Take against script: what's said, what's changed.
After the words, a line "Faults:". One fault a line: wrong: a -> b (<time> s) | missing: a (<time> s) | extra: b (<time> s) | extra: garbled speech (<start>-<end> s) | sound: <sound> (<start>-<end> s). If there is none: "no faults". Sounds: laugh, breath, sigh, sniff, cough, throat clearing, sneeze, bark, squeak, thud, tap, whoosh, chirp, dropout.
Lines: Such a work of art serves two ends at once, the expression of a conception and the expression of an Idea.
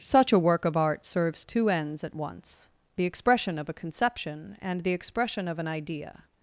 Such a work of art serves two ends at once, the expression of a conception and the expression of an Idea.
Faults:
no faults